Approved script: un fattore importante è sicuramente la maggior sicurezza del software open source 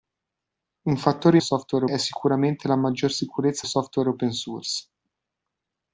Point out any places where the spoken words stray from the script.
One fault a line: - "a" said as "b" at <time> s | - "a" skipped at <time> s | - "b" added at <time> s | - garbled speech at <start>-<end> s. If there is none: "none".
- "importante" said as "software" at 1.4 s
- "del" skipped at 3.7 s